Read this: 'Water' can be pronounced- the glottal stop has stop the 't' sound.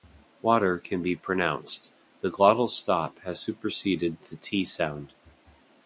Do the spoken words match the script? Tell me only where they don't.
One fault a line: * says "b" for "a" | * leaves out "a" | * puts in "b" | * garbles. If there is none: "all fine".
* says "superseded" for "stop"